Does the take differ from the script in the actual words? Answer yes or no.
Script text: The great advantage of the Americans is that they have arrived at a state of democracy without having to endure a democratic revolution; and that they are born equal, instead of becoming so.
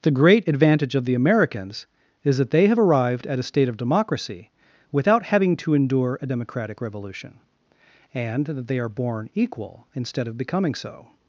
no